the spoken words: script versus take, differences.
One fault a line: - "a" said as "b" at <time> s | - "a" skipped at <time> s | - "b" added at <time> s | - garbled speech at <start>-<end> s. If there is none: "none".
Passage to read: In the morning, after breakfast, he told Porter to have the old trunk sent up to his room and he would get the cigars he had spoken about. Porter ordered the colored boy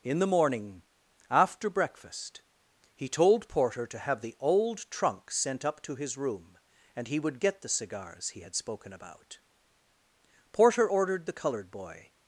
none